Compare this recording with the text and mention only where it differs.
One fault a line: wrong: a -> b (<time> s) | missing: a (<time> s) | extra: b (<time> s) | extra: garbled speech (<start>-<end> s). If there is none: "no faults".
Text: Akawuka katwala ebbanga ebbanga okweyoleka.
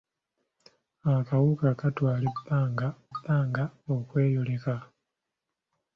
no faults